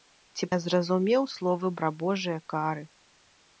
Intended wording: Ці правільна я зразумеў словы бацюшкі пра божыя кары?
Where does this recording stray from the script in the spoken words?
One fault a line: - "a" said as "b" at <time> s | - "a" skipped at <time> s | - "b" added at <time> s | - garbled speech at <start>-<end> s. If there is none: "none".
- "правільна" skipped at 0.5 s
- "бацюшкі" skipped at 1.7 s